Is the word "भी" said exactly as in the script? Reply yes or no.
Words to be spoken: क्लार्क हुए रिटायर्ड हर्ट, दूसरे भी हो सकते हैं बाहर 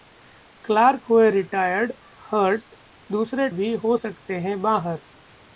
yes